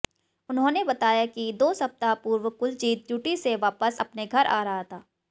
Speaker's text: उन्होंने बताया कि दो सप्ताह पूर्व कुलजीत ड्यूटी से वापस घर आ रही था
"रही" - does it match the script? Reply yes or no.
no